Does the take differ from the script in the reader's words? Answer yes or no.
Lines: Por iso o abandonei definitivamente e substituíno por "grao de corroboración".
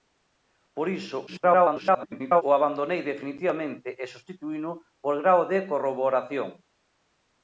yes